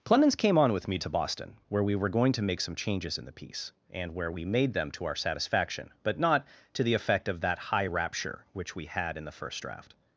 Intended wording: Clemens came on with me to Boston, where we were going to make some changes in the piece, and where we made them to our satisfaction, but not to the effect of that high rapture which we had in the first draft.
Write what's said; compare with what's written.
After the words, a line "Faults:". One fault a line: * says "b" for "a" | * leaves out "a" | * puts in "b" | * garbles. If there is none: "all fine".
Clemens came on with me to Boston, where we were going to make some changes in the piece, and where we made them to our satisfaction, but not to the effect of that high rapture which we had in the first draft.
Faults:
all fine